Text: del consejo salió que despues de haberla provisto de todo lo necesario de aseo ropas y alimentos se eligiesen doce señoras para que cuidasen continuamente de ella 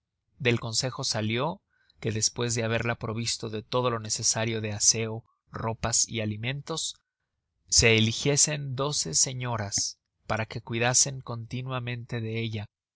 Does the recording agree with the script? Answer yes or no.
yes